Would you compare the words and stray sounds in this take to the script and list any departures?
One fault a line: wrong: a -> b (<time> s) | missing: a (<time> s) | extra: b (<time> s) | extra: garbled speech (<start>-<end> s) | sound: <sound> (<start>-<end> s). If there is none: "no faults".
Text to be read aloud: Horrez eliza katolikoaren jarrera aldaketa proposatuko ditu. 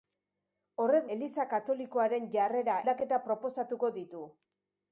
no faults